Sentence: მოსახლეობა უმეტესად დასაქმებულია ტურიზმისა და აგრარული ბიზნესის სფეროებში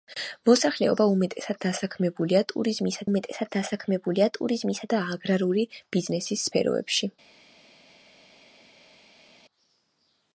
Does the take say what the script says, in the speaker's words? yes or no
no